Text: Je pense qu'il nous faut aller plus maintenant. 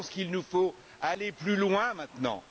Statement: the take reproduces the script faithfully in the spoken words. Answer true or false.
false